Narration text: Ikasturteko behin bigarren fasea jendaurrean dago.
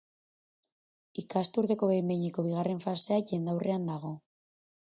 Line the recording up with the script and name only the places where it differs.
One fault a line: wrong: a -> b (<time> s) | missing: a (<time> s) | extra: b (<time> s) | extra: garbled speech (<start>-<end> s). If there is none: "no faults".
extra: behineko (2.1 s)